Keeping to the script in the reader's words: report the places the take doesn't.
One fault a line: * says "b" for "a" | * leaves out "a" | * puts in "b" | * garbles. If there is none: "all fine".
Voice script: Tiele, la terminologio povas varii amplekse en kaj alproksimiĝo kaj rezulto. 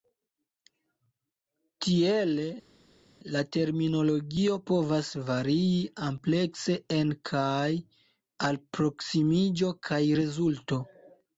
all fine